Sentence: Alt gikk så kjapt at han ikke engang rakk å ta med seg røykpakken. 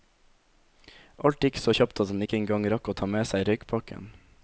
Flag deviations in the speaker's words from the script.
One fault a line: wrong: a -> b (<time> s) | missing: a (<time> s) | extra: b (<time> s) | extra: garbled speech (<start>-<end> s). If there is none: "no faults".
no faults